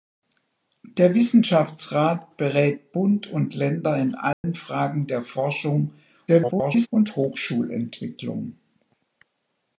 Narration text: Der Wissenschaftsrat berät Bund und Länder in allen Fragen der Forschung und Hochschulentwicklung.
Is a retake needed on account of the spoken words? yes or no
yes